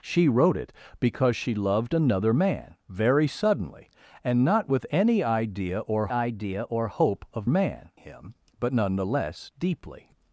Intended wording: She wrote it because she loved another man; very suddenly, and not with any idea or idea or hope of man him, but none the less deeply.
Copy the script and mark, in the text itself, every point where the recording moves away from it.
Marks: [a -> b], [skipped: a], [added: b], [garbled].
She wrote it because she loved another man; very suddenly, and not with any idea or idea or hope of man him, but none the less deeply.